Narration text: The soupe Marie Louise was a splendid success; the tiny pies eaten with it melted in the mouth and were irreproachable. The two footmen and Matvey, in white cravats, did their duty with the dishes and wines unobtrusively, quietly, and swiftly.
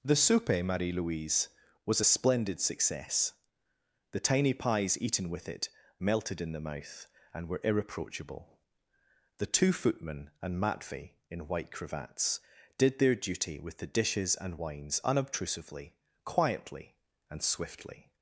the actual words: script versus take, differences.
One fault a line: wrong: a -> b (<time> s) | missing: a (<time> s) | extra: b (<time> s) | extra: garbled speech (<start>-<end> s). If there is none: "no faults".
no faults